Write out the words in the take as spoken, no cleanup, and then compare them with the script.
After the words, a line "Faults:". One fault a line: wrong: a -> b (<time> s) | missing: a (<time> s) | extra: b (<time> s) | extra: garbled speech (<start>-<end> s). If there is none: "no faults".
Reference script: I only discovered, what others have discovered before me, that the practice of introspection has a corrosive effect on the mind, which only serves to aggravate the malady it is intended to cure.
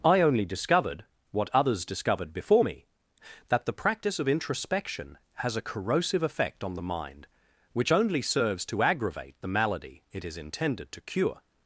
I only discovered, what others discovered before me, that the practice of introspection has a corrosive effect on the mind, which only serves to aggravate the malady it is intended to cure.
Faults:
missing: have (1.9 s)